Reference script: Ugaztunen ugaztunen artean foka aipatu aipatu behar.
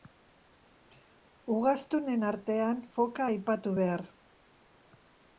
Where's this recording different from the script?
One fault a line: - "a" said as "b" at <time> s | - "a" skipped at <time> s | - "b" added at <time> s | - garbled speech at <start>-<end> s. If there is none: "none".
- "ugaztunen" skipped at 2.2 s
- "aipatu" skipped at 3.8 s